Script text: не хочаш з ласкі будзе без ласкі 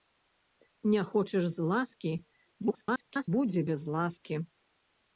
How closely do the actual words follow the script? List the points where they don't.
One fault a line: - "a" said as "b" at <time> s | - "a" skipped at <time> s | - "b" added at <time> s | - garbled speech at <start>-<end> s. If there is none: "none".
- garbled speech at 2.6-3.3 s